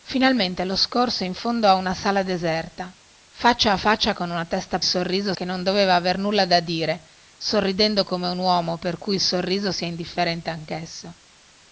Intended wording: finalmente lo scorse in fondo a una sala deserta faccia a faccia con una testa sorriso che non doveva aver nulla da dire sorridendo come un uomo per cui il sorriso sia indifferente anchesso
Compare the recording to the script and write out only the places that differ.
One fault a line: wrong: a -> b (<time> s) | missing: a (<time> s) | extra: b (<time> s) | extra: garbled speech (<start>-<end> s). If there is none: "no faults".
no faults